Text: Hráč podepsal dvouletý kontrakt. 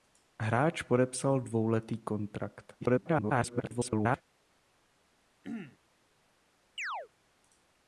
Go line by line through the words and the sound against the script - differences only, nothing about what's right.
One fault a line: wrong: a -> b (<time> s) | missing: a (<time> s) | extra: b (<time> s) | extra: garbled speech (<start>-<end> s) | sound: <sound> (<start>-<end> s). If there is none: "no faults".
extra: garbled speech (2.8-4.2 s)
sound: throat clearing (5.4-5.8 s)
sound: chirp (6.8-7.1 s)